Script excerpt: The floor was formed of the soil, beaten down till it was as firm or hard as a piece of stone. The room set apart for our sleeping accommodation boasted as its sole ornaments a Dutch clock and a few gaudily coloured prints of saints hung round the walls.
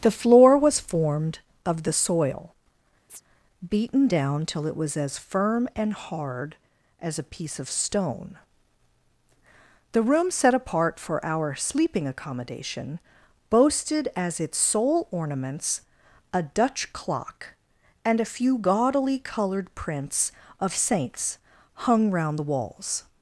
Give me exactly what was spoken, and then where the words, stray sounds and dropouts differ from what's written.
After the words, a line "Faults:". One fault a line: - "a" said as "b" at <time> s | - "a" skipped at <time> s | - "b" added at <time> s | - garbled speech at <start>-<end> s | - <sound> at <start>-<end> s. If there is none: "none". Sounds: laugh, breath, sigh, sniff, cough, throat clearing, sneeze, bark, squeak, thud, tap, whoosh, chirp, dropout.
The floor was formed of the soil, beaten down till it was as firm and hard as a piece of stone. The room set apart for our sleeping accommodation boasted as its sole ornaments a Dutch clock and a few gaudily coloured prints of saints hung round the walls.
Faults:
- chirp at 3.1-3.2 s
- "or" said as "and" at 5.7 s